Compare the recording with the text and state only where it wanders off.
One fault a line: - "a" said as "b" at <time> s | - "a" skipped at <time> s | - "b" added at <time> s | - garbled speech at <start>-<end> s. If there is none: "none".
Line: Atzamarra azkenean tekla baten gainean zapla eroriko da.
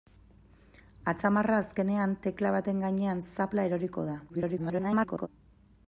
- garbled speech at 4.3-5.3 s